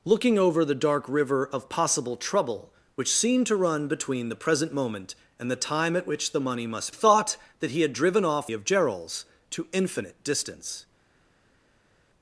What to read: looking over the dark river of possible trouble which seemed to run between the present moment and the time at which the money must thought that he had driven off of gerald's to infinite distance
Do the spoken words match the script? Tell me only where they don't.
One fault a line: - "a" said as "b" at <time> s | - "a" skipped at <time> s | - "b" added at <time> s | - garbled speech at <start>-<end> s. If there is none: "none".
none